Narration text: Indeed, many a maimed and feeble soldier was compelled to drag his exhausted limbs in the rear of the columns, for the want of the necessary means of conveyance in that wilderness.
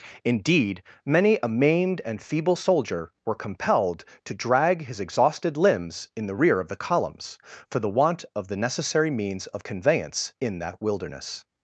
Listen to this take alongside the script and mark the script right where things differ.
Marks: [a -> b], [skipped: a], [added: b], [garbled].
Indeed, many a maimed and feeble soldier [was -> were] compelled to drag his exhausted limbs in the rear of the columns, for the want of the necessary means of conveyance in that wilderness.